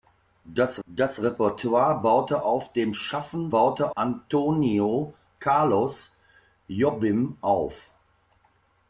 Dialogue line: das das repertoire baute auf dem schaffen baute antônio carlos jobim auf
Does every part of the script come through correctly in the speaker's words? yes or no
yes